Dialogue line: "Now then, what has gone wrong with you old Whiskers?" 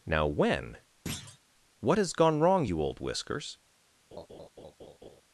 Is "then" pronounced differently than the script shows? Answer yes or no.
yes